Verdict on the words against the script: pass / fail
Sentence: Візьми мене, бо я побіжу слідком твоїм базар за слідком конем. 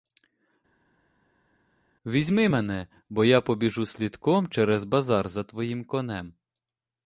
fail